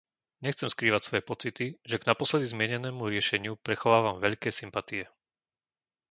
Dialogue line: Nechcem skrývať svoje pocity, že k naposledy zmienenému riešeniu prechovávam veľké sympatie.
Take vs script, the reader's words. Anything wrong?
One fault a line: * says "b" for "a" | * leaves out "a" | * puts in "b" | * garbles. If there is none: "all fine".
all fine